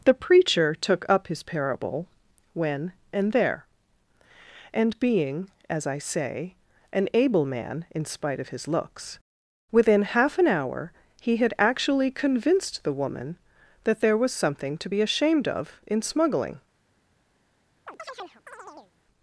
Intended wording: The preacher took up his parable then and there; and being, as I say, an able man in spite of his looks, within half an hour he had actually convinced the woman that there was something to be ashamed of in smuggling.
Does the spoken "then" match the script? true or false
false